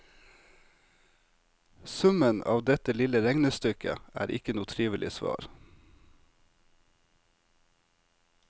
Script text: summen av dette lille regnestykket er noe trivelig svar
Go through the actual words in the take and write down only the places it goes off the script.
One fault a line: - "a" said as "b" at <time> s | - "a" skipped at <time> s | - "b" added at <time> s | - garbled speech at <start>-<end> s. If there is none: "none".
- "ikke" added at 4.4 s